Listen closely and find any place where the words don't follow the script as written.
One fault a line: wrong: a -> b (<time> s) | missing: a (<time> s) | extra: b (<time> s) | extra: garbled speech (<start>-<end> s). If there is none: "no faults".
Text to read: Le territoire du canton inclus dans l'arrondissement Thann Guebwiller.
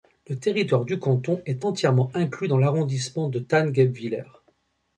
extra: est entièrement (1.4 s)
extra: de (3.3 s)